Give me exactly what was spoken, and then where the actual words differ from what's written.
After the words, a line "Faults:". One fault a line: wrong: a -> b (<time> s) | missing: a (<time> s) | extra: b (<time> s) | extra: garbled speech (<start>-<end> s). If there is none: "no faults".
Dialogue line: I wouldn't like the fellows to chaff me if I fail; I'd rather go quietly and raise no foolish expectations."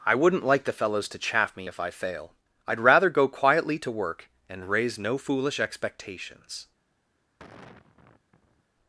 I wouldn't like the fellows to chaff me if I fail; I'd rather go quietly to work and raise no foolish expectations."
Faults:
extra: to work (3.8 s)